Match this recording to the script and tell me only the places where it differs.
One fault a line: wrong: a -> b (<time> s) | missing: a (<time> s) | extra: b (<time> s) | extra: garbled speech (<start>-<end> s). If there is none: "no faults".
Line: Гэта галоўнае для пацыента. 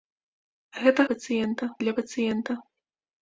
wrong: галоўнае -> пацыента (1.1 s)